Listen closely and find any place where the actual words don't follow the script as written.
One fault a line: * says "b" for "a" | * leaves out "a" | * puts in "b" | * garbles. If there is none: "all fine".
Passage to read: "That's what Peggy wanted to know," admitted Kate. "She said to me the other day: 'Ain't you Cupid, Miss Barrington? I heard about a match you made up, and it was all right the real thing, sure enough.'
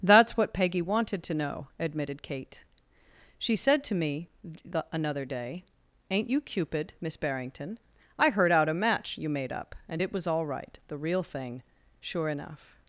* says "another" for "other"
* says "out" for "about"